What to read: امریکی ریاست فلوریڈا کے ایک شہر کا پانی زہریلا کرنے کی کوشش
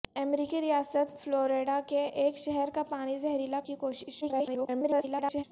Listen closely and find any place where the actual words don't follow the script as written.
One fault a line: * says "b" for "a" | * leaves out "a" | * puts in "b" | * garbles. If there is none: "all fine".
* leaves out "کرنے"
* garbles